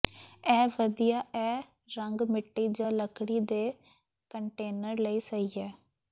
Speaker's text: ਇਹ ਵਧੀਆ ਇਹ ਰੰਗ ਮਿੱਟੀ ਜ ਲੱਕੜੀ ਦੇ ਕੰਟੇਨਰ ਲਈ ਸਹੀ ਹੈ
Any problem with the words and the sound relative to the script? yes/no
no